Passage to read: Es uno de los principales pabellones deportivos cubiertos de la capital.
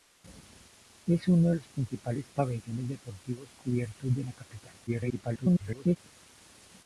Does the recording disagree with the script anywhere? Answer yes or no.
yes